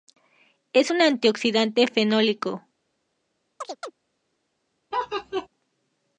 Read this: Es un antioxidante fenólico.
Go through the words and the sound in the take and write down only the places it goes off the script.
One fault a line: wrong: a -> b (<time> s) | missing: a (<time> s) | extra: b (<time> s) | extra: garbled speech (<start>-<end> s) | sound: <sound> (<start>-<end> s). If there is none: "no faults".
sound: chirp (3.6-3.9 s)
sound: laugh (4.9-5.5 s)